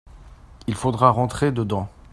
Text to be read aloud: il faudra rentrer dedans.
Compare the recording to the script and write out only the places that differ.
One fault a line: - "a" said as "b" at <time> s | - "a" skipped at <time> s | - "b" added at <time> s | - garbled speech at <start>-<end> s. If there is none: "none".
none